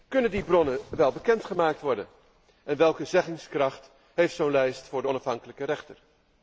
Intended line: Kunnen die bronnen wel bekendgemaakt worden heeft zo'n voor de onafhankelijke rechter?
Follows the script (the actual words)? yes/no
no